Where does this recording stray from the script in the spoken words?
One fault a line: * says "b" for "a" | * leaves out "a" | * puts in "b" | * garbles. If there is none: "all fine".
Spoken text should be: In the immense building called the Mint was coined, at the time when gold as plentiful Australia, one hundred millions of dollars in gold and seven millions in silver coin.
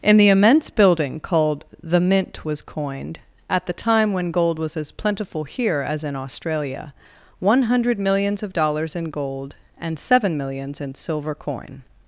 * puts in "was"
* puts in "here as in"